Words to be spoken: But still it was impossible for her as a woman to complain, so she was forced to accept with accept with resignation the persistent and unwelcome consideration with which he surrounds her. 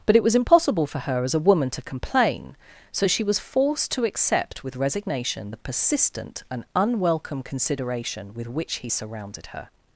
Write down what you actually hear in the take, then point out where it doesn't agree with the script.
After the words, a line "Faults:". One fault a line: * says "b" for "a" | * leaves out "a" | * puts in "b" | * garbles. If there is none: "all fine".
But it was impossible for her as a woman to complain, so she was forced to accept with resignation the persistent and unwelcome consideration with which he surrounded her.
Faults:
* leaves out "still"
* leaves out "accept with"
* says "surrounded" for "surrounds"